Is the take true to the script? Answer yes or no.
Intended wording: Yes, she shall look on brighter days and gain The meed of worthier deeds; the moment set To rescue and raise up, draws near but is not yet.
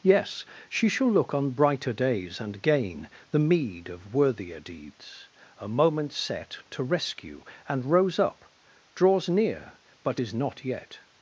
no